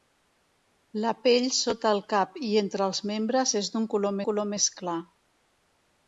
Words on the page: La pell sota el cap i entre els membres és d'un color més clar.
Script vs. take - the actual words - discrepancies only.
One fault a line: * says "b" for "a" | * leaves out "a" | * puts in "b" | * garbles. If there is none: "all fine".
* puts in "color"